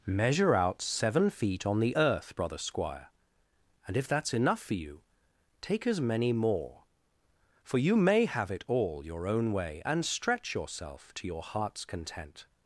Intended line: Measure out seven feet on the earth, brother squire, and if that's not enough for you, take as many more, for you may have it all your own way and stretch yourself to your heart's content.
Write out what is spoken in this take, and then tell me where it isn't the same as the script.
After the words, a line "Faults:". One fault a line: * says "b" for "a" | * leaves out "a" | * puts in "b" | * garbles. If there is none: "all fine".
Measure out seven feet on the earth, brother squire, and if that's enough for you, take as many more, for you may have it all your own way and stretch yourself to your heart's content.
Faults:
* leaves out "not"